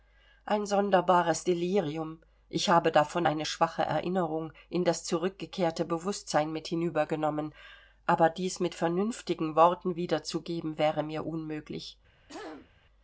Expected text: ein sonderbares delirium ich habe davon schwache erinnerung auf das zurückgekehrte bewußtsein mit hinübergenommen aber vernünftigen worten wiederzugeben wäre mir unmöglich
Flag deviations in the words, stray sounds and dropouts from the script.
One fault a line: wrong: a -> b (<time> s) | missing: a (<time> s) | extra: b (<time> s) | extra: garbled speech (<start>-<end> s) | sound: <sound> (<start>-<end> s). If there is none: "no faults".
extra: eine (3.2 s)
wrong: auf -> in (4.7 s)
extra: dies mit (8.3 s)
sound: throat clearing (12.3-12.7 s)